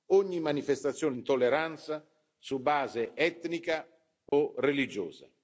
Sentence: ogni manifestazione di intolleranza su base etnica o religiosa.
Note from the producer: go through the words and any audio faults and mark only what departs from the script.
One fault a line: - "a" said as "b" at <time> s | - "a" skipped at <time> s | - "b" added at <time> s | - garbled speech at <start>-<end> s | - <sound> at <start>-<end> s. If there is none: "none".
- "di" skipped at 1.1 s
- dropout at 4.3-4.3 s